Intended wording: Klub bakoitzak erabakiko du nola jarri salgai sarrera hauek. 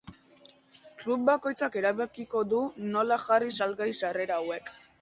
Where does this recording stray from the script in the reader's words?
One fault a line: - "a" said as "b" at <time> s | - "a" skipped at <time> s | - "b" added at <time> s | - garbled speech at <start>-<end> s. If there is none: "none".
none